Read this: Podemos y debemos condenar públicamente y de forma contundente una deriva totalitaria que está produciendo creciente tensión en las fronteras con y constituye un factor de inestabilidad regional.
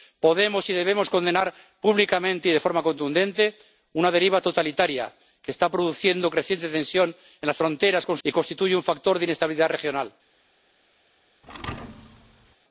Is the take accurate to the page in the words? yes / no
yes